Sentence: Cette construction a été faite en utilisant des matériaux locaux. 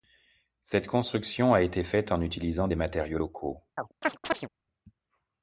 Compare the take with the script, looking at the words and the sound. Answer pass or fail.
fail